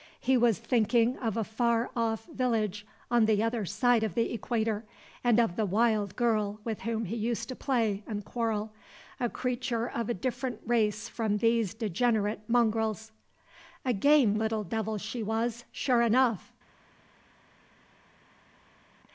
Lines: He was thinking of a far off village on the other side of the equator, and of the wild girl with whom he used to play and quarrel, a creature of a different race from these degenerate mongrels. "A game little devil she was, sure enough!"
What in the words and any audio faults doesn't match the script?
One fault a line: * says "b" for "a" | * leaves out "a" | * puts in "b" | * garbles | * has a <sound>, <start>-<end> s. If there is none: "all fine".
all fine